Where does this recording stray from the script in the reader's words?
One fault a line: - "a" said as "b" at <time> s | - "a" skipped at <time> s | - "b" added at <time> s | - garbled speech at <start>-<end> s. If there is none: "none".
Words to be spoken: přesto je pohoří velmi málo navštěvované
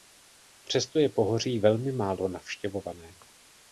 none